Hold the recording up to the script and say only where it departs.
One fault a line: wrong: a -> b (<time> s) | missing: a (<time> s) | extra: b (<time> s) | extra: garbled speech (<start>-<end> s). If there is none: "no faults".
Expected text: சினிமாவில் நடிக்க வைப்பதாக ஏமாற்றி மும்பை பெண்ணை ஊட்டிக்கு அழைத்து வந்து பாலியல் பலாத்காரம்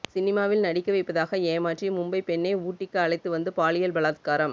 no faults